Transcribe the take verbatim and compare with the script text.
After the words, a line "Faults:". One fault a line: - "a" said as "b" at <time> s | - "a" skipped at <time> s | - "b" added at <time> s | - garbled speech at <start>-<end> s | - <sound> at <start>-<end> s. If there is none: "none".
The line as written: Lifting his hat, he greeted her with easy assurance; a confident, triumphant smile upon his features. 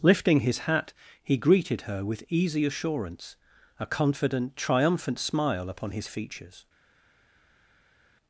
Lifting his hat, he greeted her with easy assurance; a confident, triumphant smile upon his features.
Faults:
none